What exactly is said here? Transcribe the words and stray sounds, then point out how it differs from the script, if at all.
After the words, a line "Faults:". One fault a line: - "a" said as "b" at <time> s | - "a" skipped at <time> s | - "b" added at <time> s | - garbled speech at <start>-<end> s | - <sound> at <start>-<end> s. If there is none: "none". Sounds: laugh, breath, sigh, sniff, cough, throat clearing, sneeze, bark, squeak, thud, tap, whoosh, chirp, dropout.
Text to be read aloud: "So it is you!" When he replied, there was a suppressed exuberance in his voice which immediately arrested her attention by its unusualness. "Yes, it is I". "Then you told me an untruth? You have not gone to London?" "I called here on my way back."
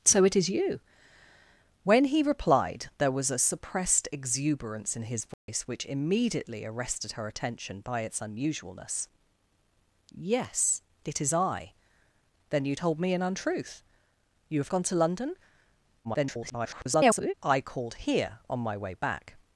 "So it is you!" When he replied, there was a suppressed exuberance in his voice which immediately arrested her attention by its unusualness. "Yes, it is I". "Then you told me an untruth? You have gone to London?" [garbled] "I called here on my way back."
Faults:
- dropout at 5.3-5.5 s
- "not" skipped at 14.7 s
- garbled speech at 16.0-17.3 s